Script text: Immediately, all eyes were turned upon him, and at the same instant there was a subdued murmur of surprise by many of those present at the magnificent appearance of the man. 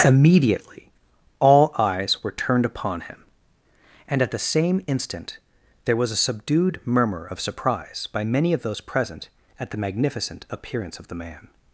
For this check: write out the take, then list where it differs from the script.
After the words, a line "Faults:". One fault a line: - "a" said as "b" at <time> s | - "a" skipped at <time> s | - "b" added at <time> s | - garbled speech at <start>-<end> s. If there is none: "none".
Immediately, all eyes were turned upon him, and at the same instant there was a subdued murmur of surprise by many of those present at the magnificent appearance of the man.
Faults:
none